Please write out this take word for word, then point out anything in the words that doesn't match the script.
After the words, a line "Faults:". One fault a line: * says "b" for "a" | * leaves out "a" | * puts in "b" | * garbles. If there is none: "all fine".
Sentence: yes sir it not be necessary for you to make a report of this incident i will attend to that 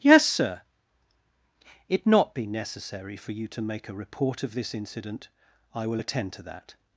yes sir it not be necessary for you to make a report of this incident i will attend to that
Faults:
all fine